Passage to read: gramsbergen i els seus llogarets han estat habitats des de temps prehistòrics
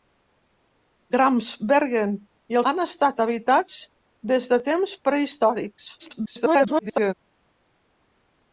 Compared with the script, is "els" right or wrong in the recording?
wrong